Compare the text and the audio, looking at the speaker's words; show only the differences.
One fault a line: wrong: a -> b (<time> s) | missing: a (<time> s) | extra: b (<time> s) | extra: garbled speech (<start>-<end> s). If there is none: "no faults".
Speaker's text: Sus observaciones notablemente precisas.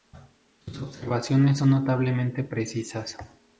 extra: son (1.6 s)